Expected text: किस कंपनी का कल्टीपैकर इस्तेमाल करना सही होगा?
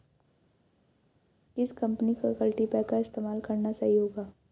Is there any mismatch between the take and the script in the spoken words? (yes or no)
no